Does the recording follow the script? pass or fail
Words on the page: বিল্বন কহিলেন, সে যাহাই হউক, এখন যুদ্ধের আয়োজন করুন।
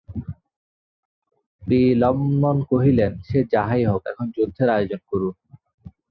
pass